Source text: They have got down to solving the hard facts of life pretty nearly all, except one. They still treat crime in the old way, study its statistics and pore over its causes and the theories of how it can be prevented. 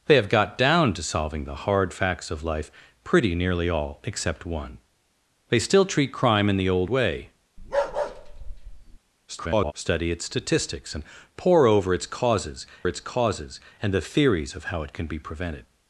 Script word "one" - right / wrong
right